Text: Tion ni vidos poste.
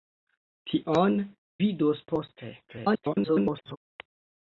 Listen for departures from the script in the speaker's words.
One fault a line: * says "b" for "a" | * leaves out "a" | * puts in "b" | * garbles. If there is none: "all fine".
* leaves out "ni"
* garbles